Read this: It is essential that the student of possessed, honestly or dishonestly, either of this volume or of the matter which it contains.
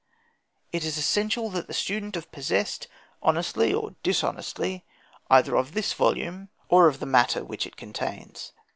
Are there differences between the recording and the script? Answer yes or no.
no